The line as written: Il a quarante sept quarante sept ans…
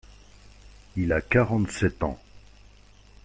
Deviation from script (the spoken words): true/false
true